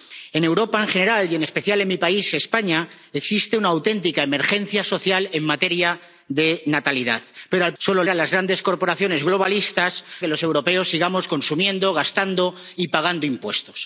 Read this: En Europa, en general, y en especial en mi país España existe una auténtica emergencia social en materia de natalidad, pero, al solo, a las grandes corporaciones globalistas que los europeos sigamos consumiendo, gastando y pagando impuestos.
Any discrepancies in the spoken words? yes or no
no